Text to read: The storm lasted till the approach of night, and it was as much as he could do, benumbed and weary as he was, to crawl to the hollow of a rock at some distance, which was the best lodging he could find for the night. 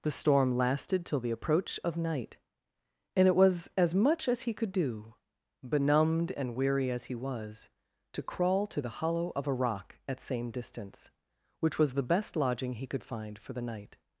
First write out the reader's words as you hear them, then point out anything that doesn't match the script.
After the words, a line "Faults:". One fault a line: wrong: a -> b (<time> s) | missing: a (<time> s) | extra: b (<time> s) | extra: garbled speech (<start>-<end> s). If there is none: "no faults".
The storm lasted till the approach of night, and it was as much as he could do, benumbed and weary as he was, to crawl to the hollow of a rock at same distance, which was the best lodging he could find for the night.
Faults:
wrong: some -> same (10.2 s)